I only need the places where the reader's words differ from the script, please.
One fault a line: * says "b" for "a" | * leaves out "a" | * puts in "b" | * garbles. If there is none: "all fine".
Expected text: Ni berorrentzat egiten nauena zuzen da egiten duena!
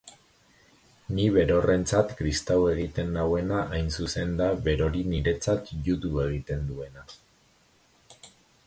* puts in "kristau"
* puts in "hain"
* puts in "berori niretzat judu"